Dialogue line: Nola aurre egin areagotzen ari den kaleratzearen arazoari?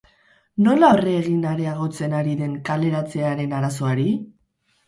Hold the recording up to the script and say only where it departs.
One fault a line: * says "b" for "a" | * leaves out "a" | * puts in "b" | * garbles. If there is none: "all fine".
all fine